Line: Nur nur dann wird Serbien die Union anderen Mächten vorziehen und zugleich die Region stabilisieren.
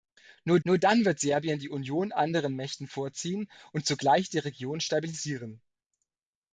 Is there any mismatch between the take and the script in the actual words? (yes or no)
no